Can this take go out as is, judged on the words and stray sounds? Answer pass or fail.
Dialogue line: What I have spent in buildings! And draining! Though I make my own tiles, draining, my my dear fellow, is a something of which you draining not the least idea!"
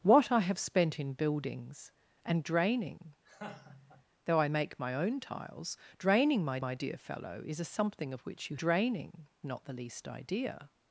fail